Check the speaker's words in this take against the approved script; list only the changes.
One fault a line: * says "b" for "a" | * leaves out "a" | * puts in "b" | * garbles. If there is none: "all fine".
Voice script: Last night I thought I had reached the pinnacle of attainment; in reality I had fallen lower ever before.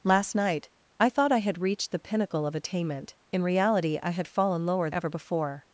all fine